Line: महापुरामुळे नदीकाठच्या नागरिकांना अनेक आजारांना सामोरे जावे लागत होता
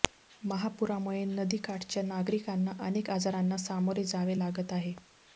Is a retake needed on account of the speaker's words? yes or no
yes